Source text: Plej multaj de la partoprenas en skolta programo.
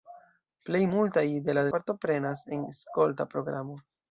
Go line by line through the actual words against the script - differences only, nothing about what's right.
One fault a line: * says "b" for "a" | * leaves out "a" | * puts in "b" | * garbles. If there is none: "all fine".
all fine